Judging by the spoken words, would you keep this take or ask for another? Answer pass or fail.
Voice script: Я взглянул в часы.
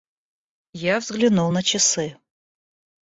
fail